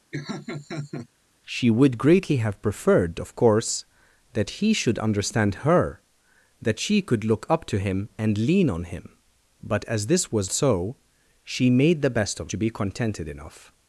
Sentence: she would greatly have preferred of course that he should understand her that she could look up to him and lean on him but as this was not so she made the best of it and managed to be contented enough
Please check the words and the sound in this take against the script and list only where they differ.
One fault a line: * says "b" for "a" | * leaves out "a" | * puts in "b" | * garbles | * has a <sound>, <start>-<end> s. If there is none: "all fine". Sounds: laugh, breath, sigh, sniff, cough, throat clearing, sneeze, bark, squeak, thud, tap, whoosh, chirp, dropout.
* has a laugh, 0.1-1.1 s
* leaves out "not"
* leaves out "it and managed"